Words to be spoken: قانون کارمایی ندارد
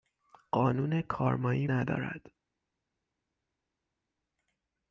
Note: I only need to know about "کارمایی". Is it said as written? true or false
true